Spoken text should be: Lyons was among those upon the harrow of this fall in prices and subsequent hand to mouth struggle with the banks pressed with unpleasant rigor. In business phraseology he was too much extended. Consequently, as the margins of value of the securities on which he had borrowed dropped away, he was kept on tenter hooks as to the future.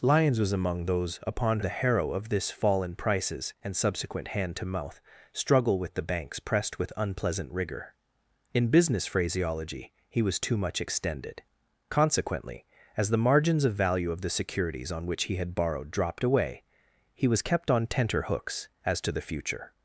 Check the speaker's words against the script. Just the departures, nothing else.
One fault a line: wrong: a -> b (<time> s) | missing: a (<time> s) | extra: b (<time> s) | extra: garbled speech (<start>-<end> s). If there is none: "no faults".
no faults